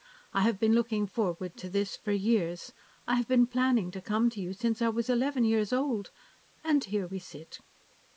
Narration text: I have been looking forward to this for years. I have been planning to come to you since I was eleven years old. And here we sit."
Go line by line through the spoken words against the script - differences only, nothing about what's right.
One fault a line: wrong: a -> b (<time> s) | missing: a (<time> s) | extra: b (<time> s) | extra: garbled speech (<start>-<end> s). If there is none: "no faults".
no faults